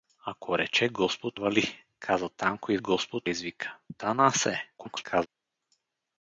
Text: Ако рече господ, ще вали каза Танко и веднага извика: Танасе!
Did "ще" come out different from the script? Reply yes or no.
yes